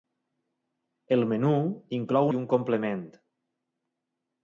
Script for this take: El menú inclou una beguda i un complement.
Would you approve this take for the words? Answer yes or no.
no